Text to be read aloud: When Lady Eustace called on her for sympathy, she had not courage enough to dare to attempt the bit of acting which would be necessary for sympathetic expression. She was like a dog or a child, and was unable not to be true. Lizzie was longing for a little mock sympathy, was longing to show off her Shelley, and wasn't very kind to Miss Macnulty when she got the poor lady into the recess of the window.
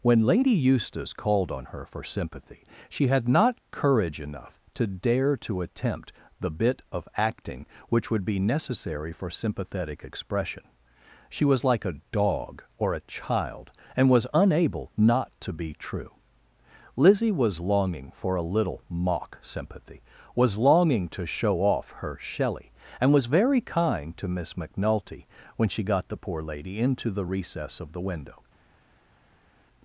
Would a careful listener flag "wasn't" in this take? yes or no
yes